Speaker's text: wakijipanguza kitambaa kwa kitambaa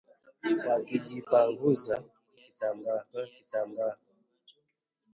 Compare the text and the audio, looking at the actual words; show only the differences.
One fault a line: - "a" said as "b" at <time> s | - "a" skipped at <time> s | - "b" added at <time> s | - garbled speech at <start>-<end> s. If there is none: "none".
none